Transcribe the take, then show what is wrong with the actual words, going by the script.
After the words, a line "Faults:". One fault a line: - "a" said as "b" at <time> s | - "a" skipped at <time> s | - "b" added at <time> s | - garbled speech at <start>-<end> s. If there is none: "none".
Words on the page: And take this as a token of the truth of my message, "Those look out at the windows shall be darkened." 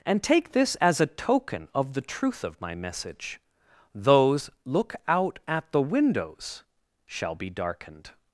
And take this as a token of the truth of my message, "Those look out at the windows shall be darkened."
Faults:
none